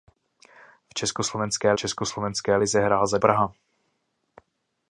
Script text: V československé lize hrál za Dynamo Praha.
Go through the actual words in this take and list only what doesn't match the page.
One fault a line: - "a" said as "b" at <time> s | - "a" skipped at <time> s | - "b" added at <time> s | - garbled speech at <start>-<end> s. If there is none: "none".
- "československé" added at 1.7 s
- "Dynamo" skipped at 3.2 s